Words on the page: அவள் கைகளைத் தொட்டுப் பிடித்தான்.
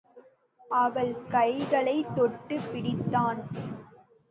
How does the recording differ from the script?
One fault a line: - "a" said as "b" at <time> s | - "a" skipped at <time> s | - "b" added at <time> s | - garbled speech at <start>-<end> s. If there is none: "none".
none